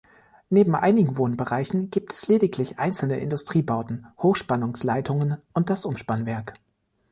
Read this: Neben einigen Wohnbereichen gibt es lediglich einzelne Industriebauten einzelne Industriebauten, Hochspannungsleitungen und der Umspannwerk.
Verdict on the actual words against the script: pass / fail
fail